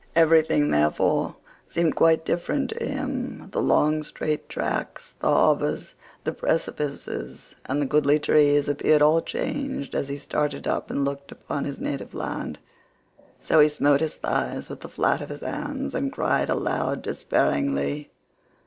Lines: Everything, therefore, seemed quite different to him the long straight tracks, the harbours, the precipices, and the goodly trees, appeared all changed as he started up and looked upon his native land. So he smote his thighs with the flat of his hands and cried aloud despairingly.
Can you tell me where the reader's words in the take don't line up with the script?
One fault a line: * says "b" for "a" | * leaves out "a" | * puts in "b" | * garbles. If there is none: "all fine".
all fine